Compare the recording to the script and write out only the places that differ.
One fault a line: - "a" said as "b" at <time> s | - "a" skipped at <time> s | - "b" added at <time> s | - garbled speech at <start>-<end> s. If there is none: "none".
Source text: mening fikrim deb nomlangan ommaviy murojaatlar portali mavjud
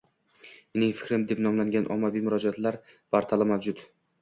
none